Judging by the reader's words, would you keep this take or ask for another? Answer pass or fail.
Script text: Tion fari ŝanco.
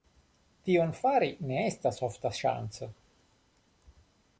fail